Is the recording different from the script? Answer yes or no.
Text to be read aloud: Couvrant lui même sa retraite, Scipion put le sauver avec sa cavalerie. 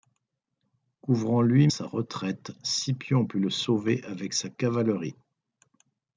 yes